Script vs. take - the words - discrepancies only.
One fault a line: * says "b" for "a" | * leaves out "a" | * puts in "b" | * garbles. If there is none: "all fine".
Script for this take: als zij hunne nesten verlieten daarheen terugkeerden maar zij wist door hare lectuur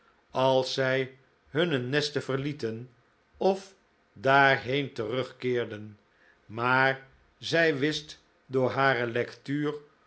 * puts in "of"